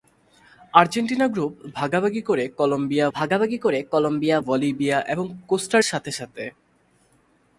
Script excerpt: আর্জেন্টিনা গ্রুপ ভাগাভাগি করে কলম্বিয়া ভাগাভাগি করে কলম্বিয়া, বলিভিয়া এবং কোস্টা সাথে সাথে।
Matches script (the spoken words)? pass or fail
pass